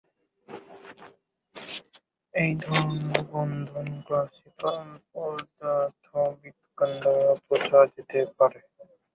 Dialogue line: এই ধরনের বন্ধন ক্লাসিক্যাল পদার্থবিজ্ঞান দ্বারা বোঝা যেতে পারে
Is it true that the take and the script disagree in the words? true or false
false